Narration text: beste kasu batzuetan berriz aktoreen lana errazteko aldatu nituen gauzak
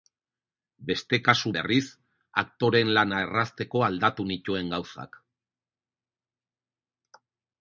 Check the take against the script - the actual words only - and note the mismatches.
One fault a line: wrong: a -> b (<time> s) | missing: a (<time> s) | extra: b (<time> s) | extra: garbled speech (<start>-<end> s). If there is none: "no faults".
missing: batzuetan (1.5 s)